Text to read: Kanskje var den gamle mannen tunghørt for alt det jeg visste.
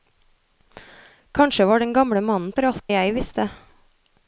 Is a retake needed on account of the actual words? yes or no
yes